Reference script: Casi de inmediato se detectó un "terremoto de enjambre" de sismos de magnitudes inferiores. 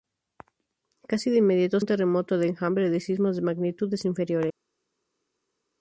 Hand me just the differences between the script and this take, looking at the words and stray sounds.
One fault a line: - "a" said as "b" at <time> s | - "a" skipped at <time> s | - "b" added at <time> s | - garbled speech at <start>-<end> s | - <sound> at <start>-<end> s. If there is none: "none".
- "se detectó" skipped at 1.8 s